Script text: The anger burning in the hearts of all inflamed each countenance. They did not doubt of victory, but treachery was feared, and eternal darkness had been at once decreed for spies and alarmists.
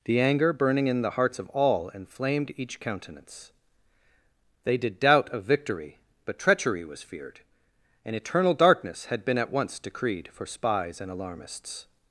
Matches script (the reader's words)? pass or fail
fail